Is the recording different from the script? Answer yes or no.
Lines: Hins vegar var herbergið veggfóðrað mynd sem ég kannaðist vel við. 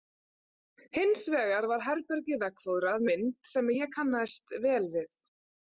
no